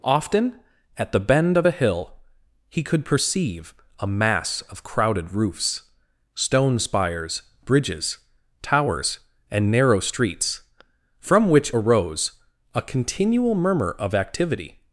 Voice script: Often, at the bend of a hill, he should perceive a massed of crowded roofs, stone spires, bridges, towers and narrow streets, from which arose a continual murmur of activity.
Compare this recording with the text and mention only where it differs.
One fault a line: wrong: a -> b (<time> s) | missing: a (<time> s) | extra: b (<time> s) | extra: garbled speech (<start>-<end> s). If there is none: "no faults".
wrong: should -> could (2.8 s)
wrong: massed -> mass (4.1 s)